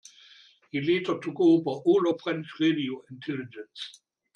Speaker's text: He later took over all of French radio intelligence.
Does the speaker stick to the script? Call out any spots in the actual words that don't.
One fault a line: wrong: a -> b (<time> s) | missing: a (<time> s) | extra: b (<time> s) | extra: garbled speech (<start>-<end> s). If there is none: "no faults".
no faults